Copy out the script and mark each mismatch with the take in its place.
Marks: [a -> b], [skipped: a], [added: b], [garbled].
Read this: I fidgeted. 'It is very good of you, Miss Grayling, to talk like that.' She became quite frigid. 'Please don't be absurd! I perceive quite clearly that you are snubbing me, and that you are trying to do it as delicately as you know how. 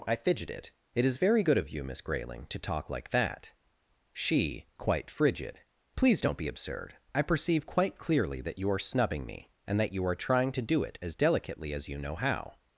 I fidgeted. 'It is very good of you, Miss Grayling, to talk like that.' She [skipped: became] quite frigid. 'Please don't be absurd! I perceive quite clearly that you are snubbing me, and that you are trying to do it as delicately as you know how.